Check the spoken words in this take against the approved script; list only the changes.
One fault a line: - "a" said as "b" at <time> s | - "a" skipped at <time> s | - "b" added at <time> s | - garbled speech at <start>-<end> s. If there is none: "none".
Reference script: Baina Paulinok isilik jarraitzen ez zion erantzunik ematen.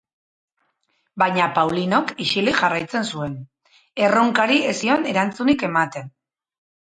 - "zuen erronkari" added at 3.1 s